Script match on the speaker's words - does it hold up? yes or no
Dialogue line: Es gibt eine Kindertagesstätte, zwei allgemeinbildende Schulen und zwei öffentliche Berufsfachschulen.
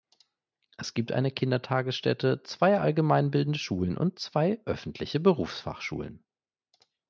yes